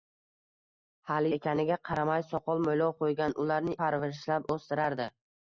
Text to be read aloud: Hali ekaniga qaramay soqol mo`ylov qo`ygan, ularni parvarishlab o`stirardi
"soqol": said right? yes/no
yes